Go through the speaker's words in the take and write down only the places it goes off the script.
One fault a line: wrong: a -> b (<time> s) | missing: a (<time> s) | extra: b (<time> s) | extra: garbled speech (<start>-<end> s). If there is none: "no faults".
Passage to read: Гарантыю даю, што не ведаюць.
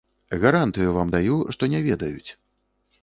extra: вам (0.9 s)